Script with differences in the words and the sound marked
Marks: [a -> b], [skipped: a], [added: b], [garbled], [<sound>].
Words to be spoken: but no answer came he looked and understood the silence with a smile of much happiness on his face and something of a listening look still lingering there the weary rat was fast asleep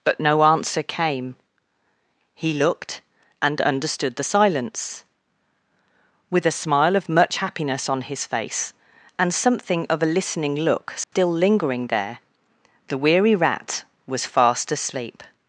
but no answer came he looked and understood the silence with a smile of much happiness on his face and something of a listening look still [dropout] lingering there the weary rat was fast asleep